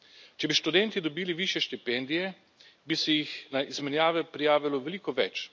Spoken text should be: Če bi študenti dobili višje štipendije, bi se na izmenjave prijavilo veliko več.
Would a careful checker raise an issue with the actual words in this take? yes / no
yes